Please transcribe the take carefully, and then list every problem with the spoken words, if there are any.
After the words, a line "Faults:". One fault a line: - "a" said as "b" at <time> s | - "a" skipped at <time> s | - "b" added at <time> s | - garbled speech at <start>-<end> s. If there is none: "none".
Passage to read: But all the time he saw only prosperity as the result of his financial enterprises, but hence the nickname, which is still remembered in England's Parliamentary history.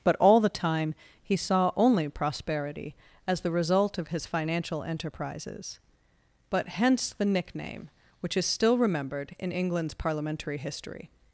But all the time he saw only prosperity as the result of his financial enterprises, but hence the nickname, which is still remembered in England's Parliamentary history.
Faults:
none